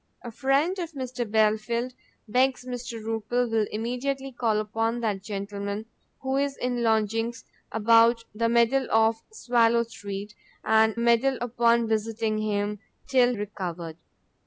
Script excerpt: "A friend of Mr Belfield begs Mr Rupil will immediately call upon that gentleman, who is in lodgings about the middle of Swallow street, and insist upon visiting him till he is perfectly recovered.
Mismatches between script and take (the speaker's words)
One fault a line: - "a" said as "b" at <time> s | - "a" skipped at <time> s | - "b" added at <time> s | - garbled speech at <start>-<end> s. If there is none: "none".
- "insist" said as "middle" at 11.0 s
- "he is perfectly" skipped at 13.3 s